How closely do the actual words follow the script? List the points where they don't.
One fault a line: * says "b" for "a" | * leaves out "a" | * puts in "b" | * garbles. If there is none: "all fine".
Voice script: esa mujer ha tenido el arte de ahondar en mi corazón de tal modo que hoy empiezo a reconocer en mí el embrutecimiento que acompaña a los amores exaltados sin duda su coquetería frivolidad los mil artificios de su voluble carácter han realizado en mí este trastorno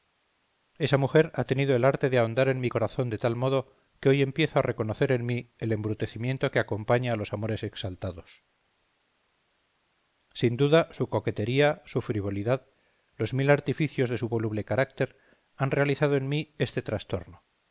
* puts in "su"